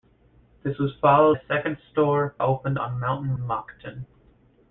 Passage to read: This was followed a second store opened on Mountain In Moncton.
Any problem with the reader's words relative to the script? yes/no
no